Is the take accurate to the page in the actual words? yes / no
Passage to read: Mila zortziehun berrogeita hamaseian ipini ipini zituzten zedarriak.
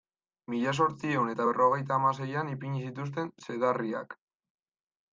no